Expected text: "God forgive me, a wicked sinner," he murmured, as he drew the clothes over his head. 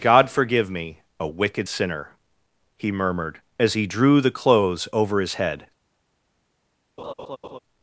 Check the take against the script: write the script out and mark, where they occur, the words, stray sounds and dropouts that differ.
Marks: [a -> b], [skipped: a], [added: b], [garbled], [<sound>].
"God forgive me, a wicked sinner," he murmured, as he drew the clothes over his head. [laugh]